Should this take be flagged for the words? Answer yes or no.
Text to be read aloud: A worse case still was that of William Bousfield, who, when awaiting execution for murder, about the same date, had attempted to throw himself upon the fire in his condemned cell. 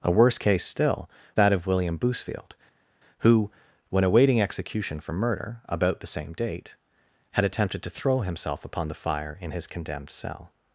yes